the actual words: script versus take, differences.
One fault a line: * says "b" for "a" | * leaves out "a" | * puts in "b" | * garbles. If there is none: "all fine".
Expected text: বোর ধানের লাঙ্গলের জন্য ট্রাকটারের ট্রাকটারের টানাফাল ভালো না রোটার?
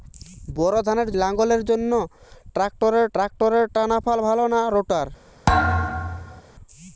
all fine